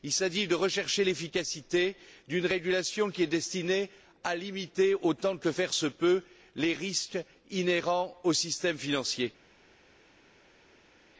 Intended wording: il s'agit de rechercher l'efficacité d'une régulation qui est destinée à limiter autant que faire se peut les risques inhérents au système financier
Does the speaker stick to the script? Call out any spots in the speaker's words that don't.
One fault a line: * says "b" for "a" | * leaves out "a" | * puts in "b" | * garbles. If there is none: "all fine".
all fine